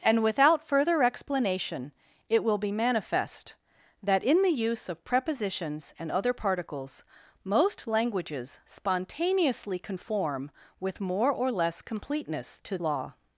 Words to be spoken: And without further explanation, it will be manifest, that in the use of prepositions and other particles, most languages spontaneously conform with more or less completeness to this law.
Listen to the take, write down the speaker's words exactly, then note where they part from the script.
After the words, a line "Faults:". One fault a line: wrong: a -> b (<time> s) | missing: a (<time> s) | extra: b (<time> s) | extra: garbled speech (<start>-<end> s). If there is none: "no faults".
And without further explanation, it will be manifest, that in the use of prepositions and other particles, most languages spontaneously conform with more or less completeness to law.
Faults:
missing: this (12.8 s)